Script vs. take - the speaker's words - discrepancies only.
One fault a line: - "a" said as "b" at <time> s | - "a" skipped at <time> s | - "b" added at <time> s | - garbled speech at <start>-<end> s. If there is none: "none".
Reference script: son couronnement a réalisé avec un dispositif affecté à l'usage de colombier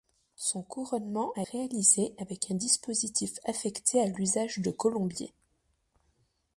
none